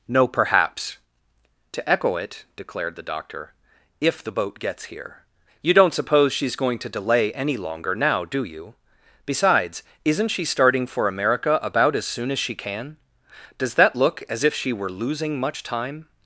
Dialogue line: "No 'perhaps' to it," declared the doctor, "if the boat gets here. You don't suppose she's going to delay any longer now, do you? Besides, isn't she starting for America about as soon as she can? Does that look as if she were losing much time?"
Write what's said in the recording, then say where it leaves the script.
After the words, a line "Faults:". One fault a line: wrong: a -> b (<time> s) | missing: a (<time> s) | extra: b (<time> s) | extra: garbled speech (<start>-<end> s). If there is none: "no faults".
"No 'perhaps' to echo it," declared the doctor, "if the boat gets here. You don't suppose she's going to delay any longer now, do you? Besides, isn't she starting for America about as soon as she can? Does that look as if she were losing much time?"
Faults:
extra: echo (1.9 s)